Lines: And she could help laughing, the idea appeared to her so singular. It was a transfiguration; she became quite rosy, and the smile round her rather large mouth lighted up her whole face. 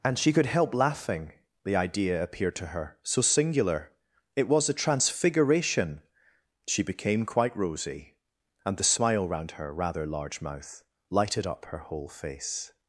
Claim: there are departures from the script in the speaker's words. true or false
false